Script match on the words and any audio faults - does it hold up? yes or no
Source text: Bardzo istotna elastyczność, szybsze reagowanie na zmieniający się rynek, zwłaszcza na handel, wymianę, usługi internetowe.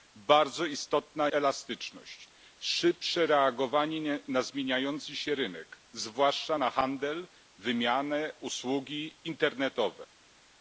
yes